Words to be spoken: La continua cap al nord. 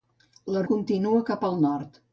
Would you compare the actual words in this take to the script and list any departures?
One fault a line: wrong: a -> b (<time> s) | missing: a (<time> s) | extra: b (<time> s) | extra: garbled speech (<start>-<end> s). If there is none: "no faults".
no faults